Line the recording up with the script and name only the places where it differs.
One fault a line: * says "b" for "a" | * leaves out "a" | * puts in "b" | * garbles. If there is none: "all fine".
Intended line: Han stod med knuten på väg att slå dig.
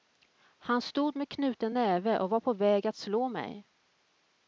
* puts in "näve och var"
* says "mig" for "dig"